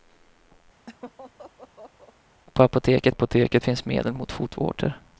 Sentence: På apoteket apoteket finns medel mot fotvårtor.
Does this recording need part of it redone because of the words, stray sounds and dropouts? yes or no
yes